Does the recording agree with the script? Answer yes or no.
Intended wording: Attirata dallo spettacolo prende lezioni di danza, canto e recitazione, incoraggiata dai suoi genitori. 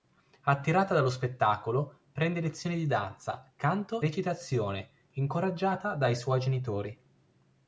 no